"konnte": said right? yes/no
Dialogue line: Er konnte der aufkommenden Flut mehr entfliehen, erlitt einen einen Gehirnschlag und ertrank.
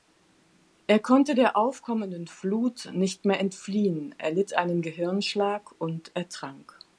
yes